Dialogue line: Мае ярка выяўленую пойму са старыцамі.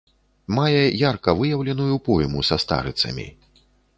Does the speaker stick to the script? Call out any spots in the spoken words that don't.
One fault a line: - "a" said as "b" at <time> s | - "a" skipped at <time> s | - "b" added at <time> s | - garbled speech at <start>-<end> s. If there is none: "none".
none